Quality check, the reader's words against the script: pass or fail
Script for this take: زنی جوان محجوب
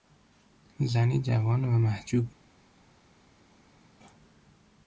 fail